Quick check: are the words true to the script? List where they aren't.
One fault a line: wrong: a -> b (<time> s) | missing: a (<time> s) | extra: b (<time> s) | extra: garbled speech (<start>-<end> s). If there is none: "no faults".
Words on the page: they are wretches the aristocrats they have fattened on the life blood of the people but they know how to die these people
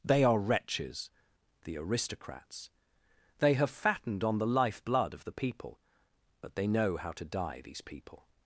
no faults